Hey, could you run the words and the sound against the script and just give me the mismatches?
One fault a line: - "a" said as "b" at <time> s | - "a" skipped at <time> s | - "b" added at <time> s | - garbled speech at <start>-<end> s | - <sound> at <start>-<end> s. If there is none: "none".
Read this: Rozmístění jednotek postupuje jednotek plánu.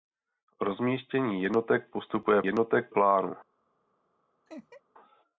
- laugh at 4.5-4.8 s